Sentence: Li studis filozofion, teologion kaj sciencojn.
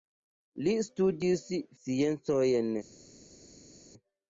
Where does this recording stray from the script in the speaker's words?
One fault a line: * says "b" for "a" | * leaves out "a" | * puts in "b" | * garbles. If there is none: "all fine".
* leaves out "filozofion teologion kaj"